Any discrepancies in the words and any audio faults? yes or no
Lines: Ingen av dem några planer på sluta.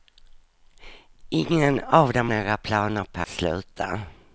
no